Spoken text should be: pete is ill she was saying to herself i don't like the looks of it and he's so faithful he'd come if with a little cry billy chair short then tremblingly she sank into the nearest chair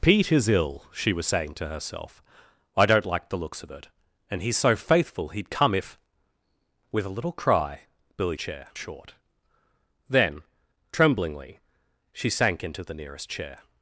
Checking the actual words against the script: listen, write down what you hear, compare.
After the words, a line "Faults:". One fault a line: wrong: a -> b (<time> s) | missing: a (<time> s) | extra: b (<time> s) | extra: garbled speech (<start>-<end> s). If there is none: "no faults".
pete is ill she was saying to herself i don't like the looks of it and he's so faithful he'd come if with a little cry billy chair short then tremblingly she sank into the nearest chair
Faults:
no faults